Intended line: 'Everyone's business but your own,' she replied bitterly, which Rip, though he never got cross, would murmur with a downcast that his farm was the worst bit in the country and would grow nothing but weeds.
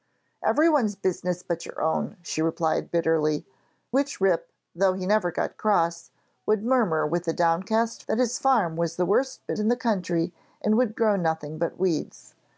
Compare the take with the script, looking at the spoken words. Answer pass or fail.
pass